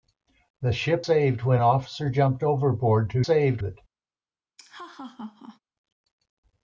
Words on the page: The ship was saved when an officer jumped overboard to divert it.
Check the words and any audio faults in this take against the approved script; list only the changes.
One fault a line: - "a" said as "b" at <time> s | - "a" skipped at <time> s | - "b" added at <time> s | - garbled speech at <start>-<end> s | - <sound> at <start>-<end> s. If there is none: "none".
- "was" skipped at 1.1 s
- "an" skipped at 1.6 s
- "divert" said as "saved" at 3.2 s
- laugh at 4.6-5.6 s